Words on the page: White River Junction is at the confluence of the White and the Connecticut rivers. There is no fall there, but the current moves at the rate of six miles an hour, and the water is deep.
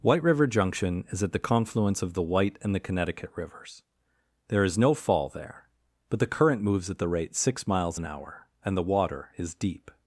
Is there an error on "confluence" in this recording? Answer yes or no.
no